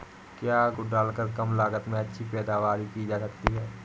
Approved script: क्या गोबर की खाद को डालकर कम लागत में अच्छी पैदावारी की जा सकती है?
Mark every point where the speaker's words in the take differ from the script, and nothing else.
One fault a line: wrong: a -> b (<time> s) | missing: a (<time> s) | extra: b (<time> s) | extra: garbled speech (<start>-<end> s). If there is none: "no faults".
missing: गोबर की खाद (0.7 s)